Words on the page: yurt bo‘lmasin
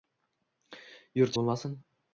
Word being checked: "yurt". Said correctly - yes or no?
yes